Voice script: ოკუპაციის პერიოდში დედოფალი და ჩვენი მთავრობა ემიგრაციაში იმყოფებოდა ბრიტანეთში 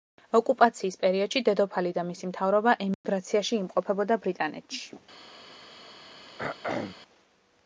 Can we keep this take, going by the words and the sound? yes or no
no